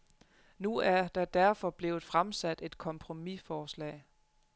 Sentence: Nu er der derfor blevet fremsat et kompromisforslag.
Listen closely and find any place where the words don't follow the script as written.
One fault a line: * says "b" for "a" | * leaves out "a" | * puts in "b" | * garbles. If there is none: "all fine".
all fine